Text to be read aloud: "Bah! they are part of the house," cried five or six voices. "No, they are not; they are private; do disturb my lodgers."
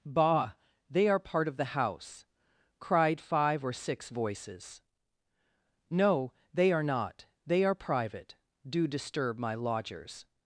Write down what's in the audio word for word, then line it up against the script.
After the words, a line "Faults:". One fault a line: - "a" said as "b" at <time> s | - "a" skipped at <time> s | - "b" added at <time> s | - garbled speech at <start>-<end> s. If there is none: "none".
"Bah! they are part of the house," cried five or six voices. "No, they are not; they are private; do disturb my lodgers."
Faults:
none